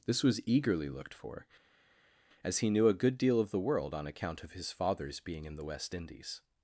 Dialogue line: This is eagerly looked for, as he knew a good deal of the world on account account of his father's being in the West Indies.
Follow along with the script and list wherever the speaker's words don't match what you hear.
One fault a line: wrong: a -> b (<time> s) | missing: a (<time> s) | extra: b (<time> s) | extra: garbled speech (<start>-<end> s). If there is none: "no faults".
wrong: is -> was (0.2 s)
missing: account (4.4 s)